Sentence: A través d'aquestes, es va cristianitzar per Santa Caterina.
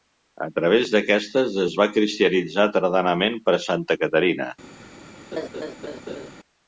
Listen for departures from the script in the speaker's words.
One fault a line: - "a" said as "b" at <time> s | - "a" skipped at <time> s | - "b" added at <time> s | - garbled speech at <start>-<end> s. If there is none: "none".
- "tardanament" added at 2.8 s